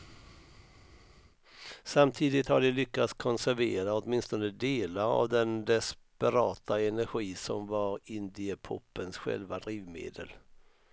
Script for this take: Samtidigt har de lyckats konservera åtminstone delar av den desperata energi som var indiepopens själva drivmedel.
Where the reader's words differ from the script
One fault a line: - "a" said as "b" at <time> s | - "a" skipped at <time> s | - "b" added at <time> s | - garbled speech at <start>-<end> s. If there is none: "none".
none